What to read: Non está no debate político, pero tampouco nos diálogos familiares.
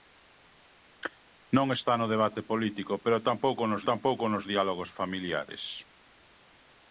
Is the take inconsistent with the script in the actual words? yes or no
yes